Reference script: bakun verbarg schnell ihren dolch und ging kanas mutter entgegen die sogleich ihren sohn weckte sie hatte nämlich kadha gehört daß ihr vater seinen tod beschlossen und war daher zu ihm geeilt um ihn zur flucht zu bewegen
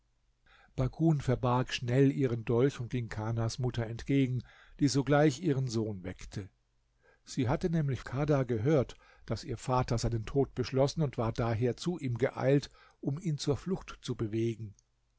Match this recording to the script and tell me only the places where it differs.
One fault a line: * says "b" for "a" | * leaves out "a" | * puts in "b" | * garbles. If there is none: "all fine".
all fine